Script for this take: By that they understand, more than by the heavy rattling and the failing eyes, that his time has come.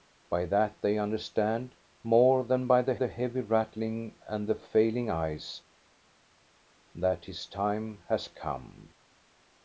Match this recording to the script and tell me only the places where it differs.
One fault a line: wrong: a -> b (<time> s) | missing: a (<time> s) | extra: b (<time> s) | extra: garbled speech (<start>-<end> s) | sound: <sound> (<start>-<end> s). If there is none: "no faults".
extra: the (2.9 s)